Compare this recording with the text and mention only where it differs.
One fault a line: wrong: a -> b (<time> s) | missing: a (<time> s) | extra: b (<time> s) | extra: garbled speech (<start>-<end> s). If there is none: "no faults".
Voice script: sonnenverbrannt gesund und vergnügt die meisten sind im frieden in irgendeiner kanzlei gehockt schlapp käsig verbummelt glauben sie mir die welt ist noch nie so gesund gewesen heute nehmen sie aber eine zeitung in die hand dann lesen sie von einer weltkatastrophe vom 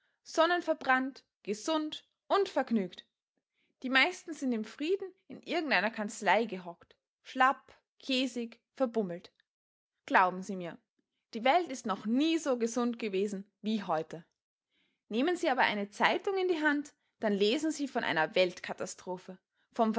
extra: wie (13.6 s)